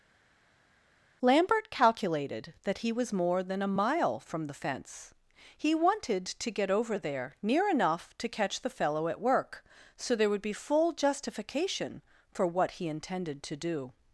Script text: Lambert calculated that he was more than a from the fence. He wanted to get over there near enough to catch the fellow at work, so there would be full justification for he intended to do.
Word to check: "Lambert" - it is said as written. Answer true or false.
true